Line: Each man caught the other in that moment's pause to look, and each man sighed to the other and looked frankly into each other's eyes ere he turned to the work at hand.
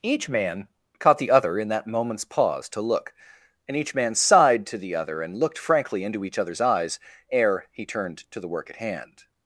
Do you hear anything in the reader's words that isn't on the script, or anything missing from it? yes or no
no